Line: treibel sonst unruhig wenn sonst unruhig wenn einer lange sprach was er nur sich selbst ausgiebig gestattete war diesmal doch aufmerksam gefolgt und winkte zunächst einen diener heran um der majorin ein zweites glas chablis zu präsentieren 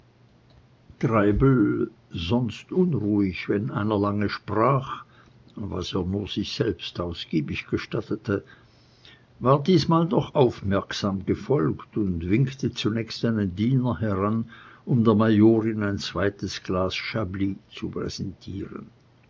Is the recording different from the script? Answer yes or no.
yes